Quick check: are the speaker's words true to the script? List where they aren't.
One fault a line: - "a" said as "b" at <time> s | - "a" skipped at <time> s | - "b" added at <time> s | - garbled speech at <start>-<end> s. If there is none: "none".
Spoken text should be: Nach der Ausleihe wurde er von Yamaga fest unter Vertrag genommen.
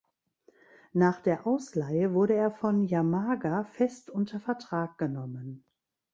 none